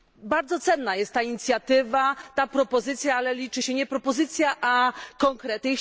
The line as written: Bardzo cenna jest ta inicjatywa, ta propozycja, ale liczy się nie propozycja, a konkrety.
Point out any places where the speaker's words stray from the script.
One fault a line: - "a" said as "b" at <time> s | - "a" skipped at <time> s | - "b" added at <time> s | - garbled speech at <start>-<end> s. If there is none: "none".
none